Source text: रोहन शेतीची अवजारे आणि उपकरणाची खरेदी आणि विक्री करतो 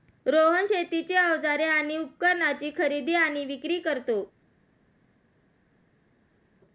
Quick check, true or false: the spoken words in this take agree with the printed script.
true